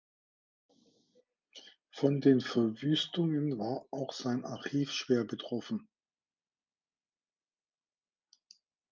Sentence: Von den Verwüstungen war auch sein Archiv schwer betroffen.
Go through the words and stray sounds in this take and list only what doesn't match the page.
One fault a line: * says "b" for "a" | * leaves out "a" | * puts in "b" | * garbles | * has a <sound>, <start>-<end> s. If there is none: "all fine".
all fine